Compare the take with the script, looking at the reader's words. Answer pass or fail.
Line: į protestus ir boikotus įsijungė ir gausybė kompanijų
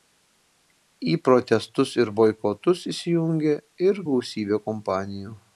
pass